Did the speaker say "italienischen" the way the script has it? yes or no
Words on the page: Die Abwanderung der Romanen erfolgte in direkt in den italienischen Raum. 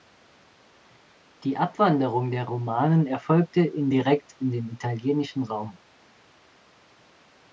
yes